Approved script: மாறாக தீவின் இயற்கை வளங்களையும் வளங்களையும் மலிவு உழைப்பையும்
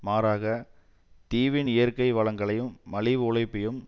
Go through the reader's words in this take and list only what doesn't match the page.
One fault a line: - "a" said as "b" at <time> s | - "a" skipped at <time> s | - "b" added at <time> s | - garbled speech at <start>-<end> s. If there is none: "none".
- "வளங்களையும்" skipped at 2.7 s